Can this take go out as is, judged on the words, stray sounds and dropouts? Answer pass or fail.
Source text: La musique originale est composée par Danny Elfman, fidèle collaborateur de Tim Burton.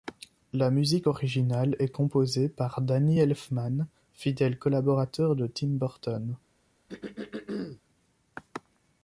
fail